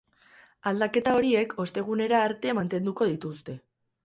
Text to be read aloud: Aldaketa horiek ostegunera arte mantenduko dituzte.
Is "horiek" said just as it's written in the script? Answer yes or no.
yes